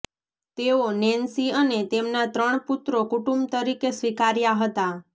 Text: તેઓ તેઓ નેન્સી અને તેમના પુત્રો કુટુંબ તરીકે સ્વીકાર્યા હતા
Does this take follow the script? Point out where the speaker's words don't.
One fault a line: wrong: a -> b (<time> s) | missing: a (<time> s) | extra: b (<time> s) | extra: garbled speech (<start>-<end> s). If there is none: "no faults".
missing: તેઓ (0.9 s)
extra: ત્રણ (2.3 s)